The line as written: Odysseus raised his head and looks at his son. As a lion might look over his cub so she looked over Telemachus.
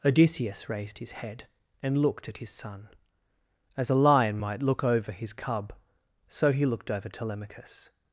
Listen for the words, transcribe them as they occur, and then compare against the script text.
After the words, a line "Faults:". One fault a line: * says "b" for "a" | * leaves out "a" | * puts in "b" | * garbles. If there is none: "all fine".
Odysseus raised his head and looked at his son. As a lion might look over his cub so he looked over Telemachus.
Faults:
* says "looked" for "looks"
* says "he" for "she"